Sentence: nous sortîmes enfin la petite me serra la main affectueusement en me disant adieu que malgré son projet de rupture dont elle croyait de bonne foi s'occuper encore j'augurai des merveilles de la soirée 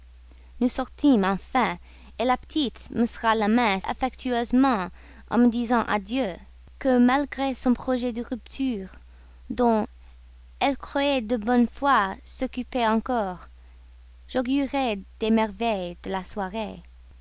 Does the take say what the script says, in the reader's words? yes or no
yes